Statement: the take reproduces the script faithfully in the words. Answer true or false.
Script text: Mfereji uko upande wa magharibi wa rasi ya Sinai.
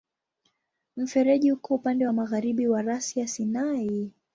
true